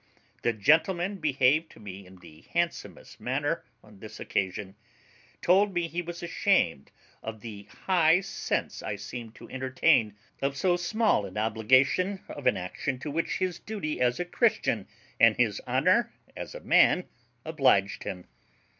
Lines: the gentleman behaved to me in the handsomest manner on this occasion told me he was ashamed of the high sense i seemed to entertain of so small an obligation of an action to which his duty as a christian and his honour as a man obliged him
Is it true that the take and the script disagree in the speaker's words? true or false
false